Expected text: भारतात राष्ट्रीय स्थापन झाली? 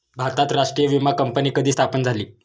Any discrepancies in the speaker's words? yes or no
yes